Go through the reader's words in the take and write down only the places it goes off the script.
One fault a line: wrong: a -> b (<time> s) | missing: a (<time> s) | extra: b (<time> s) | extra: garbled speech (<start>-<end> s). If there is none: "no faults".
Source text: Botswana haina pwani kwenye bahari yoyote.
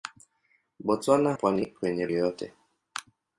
missing: haina (1.3 s)
missing: bahari (2.1 s)